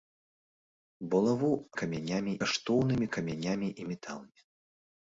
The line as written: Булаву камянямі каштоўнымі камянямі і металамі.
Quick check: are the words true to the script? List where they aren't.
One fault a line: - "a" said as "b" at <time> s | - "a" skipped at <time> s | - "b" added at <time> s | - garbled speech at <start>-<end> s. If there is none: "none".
none